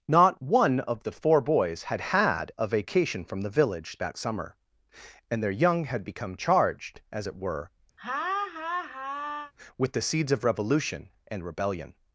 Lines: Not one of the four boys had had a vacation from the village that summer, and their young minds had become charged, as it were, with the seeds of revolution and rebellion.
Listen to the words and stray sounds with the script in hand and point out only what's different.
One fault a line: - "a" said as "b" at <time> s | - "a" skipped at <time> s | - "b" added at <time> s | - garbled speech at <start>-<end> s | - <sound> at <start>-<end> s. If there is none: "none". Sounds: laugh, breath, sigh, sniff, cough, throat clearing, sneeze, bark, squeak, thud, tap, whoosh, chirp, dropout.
- "minds" skipped at 5.9 s
- laugh at 8.0-9.5 s